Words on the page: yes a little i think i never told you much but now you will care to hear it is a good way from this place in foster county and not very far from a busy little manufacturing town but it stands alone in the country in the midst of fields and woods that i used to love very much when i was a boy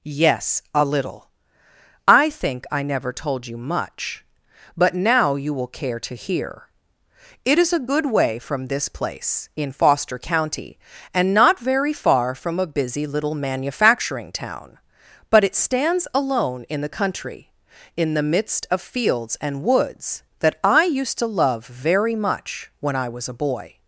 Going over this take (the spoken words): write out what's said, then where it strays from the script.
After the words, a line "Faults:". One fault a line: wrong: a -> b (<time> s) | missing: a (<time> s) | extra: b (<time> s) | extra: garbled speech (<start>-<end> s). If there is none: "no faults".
yes a little i think i never told you much but now you will care to hear it is a good way from this place in foster county and not very far from a busy little manufacturing town but it stands alone in the country in the midst of fields and woods that i used to love very much when i was a boy
Faults:
no faults